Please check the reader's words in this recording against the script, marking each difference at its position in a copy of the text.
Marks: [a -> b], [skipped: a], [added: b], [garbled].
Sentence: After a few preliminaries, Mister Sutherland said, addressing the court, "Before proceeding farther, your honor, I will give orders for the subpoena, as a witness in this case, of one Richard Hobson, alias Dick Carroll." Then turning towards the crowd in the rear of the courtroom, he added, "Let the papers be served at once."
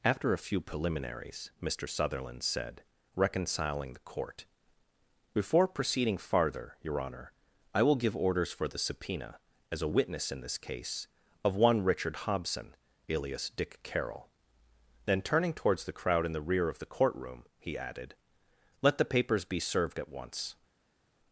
After a few preliminaries, Mister Sutherland said, [addressing -> reconciling] the court, "Before proceeding farther, your honor, I will give orders for the subpoena, as a witness in this case, of one Richard Hobson, alias Dick Carroll." Then turning towards the crowd in the rear of the courtroom, he added, "Let the papers be served at once."